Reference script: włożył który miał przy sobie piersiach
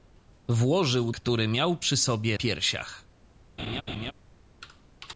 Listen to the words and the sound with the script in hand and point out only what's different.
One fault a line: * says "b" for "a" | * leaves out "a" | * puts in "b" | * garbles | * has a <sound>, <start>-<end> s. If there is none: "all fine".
* has a laugh, 3.6-4.1 s